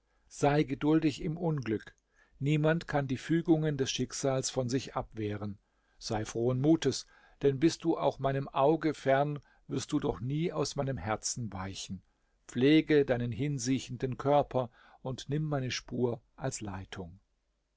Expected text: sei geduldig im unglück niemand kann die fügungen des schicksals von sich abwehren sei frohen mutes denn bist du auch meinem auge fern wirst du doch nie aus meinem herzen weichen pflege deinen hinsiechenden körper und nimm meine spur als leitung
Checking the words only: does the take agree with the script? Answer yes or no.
yes